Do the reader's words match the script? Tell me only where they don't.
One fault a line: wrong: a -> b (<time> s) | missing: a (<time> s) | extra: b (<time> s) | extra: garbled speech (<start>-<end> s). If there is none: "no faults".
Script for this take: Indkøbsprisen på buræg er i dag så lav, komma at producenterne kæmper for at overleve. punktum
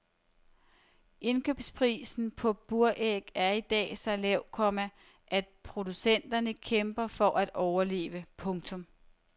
no faults